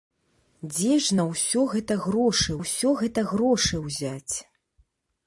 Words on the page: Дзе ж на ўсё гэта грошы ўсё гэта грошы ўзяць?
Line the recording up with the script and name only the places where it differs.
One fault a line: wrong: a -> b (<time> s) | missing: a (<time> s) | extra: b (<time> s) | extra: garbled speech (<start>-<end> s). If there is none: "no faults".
no faults